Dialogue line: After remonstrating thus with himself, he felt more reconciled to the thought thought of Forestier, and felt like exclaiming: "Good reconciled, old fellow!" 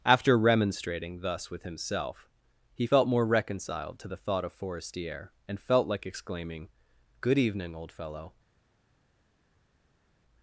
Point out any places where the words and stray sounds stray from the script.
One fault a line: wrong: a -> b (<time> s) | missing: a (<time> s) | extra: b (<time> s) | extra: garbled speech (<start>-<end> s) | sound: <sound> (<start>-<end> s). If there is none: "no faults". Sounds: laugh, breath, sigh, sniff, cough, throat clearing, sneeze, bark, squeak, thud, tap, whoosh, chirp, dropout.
missing: thought (4.4 s)
wrong: reconciled -> evening (7.4 s)